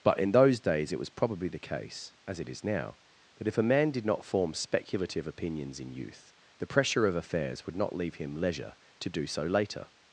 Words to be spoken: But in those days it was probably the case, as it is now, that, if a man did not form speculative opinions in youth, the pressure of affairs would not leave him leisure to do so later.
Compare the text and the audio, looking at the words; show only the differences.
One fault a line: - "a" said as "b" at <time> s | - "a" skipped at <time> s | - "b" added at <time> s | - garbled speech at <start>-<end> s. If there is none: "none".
none